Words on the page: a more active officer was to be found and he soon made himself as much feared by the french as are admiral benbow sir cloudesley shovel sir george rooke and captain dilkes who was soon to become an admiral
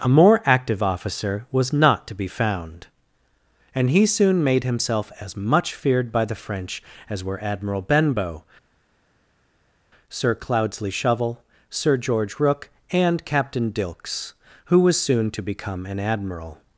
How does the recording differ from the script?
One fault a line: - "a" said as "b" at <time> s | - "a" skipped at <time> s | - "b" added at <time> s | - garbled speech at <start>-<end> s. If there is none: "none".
- "not" added at 1.7 s
- "are" said as "were" at 7.2 s